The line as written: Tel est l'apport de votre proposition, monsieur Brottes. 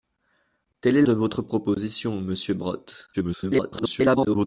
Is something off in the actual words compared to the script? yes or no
yes